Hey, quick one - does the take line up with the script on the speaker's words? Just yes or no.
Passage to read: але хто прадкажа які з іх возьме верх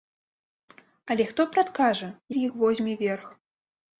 no